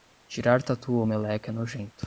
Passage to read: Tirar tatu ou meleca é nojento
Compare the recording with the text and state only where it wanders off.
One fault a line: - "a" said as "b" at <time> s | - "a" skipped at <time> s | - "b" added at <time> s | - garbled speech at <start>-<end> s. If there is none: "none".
none